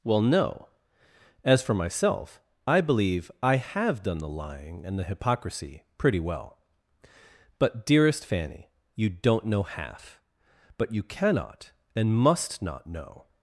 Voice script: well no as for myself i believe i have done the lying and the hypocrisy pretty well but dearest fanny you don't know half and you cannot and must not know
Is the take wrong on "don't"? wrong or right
right